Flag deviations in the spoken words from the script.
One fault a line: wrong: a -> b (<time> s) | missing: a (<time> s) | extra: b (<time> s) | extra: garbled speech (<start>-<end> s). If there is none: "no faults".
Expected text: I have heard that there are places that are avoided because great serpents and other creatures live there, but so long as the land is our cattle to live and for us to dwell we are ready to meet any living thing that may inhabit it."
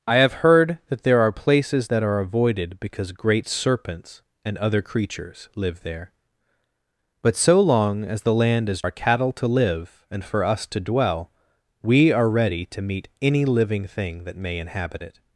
no faults